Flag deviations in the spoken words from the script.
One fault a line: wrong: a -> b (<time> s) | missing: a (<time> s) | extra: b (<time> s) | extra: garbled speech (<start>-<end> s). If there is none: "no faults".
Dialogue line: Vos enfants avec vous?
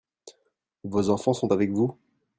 extra: sont (1.3 s)